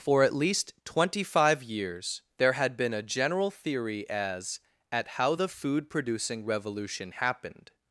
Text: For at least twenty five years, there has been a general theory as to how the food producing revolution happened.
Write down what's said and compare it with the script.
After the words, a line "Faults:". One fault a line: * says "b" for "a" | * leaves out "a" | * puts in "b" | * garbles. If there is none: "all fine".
For at least twenty five years, there had been a general theory as at how the food producing revolution happened.
Faults:
* says "had" for "has"
* says "at" for "to"